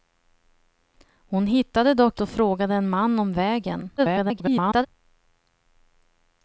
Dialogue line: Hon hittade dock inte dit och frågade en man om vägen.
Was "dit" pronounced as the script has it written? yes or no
no